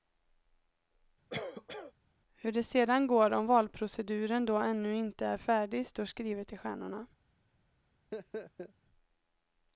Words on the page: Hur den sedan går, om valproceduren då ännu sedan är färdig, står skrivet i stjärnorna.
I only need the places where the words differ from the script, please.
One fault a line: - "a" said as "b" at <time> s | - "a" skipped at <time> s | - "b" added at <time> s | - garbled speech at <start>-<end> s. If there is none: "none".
- "den" said as "det" at 2.5 s
- "sedan" said as "inte" at 5.0 s